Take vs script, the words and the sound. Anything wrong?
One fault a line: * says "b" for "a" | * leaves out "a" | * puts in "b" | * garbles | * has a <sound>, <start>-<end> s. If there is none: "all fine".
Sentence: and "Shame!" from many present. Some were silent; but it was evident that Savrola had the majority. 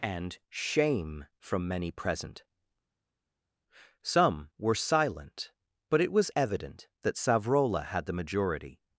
all fine